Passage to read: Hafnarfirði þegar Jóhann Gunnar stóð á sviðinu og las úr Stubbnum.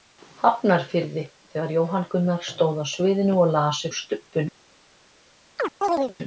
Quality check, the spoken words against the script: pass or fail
pass